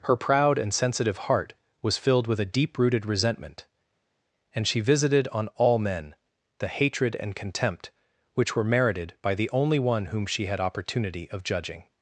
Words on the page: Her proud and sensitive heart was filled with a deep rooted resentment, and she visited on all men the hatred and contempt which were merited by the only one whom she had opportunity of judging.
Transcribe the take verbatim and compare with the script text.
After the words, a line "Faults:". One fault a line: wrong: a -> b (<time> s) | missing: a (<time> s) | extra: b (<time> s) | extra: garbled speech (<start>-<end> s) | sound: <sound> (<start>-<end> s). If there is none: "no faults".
Her proud and sensitive heart was filled with a deep rooted resentment, and she visited on all men the hatred and contempt which were merited by the only one whom she had opportunity of judging.
Faults:
no faults